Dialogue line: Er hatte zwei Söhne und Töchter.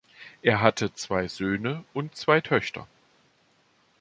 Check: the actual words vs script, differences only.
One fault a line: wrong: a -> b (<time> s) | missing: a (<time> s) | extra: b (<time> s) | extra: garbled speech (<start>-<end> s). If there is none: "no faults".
extra: zwei (2.1 s)